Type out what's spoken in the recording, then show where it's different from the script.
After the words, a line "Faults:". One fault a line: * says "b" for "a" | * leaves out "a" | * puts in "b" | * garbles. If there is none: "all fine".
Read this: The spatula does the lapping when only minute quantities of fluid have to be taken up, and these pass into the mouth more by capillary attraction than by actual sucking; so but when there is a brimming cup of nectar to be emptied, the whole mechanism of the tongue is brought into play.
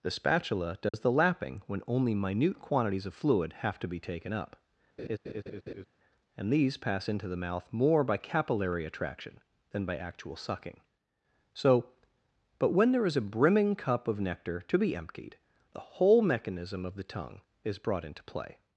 The spatula does the lapping when only minute quantities of fluid have to be taken up, and these pass into the mouth more by capillary attraction than by actual sucking; so but when there is a brimming cup of nectar to be emptied, the whole mechanism of the tongue is brought into play.
Faults:
all fine